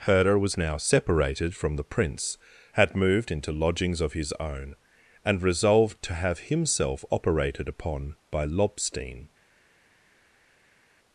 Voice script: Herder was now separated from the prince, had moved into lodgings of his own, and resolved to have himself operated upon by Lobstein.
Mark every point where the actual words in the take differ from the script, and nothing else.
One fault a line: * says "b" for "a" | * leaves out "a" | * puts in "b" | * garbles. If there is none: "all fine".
all fine